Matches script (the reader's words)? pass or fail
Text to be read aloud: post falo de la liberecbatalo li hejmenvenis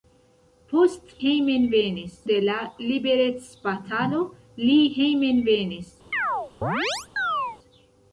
fail